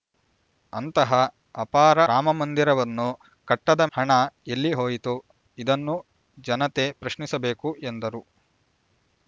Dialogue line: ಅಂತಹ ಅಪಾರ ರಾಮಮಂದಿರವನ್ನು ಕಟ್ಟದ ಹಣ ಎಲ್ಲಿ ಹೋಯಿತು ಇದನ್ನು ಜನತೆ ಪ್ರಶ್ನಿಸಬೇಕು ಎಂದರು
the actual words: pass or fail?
pass